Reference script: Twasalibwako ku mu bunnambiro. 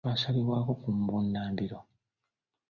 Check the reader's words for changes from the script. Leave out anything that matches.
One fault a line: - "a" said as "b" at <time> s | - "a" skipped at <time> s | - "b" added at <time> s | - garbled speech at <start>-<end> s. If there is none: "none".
none